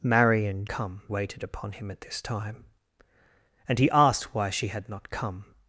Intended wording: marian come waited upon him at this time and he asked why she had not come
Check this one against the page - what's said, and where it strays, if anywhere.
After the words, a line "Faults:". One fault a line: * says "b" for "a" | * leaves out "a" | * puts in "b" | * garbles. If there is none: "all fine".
marian come waited upon him at this time and he asked why she had not come
Faults:
all fine